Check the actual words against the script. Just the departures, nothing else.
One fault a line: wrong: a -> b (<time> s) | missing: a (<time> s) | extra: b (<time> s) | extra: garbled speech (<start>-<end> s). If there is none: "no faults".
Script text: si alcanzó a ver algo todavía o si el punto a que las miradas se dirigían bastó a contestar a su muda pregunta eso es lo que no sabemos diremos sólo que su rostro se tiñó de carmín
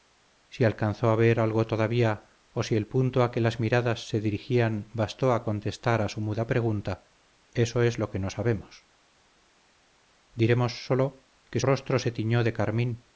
missing: su (11.6 s)